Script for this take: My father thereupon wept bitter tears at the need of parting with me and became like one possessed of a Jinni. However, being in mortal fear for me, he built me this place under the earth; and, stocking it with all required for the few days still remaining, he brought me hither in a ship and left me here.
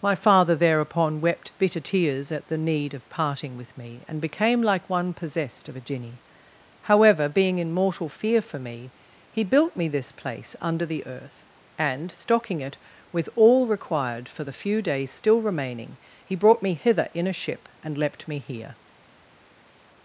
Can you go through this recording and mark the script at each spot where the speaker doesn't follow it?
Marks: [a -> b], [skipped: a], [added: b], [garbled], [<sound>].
My father thereupon wept bitter tears at the need of parting with me and became like one possessed of a Jinni. However, being in mortal fear for me, he built me this place under the earth; and, stocking it with all required for the few days still remaining, he brought me hither in a ship and [left -> leapt] me here.